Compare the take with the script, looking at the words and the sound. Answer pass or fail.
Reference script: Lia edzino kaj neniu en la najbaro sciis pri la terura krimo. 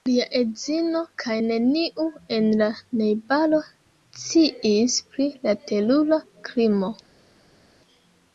pass